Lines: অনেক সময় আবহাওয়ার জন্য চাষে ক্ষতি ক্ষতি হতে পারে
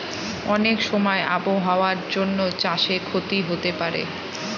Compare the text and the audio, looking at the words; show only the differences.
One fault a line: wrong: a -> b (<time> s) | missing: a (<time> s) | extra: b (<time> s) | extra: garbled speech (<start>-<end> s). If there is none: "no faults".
missing: ক্ষতি (3.4 s)